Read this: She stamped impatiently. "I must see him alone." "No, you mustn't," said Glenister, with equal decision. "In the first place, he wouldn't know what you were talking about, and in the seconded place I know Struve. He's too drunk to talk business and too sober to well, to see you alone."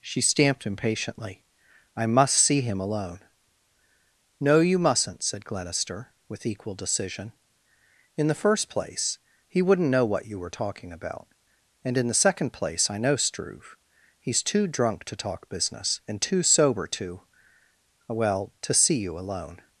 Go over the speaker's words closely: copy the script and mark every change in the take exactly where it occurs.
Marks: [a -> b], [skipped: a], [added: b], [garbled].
She stamped impatiently. "I must see him alone." "No, you mustn't," said Glenister, with equal decision. "In the first place, he wouldn't know what you were talking about, and in the [seconded -> second] place I know Struve. He's too drunk to talk business and too sober to well, to see you alone."